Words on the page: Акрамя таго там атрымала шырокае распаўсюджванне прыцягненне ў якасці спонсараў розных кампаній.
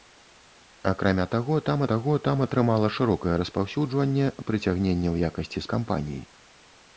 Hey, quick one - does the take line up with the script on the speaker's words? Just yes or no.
no